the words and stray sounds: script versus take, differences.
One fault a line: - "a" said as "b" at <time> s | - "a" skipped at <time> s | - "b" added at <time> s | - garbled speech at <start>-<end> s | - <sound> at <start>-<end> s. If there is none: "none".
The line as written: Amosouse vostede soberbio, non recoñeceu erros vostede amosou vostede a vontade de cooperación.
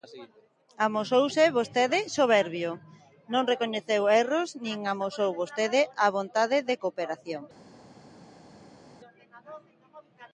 - "vostede" said as "nin" at 4.7 s